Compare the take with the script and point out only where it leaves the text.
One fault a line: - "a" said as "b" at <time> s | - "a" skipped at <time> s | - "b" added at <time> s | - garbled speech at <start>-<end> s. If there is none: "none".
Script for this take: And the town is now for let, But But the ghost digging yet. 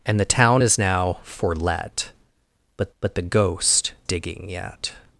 none